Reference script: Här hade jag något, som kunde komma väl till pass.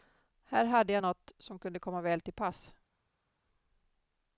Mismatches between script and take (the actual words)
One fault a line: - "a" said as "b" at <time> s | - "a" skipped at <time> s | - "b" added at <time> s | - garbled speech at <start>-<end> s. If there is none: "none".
none